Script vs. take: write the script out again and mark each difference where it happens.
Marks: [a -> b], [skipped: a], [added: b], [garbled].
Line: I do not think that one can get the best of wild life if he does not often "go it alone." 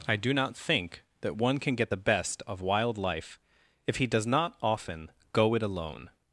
I do not think that one can get the best of wild life if he does not often "go it alone."